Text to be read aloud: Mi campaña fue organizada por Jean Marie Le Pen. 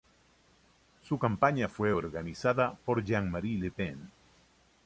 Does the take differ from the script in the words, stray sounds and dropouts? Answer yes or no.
yes